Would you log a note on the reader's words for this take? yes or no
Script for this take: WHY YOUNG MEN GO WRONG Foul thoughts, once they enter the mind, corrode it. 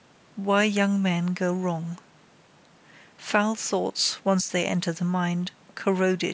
no